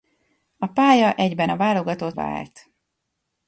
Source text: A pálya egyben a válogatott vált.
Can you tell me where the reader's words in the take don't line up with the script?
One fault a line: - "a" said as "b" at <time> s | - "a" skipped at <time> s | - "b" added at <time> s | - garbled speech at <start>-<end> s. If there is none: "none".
none